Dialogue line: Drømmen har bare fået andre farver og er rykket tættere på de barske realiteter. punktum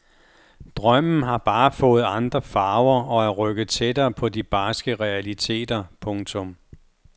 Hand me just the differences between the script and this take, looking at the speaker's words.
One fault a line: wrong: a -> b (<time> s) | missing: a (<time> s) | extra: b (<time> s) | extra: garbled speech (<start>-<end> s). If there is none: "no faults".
no faults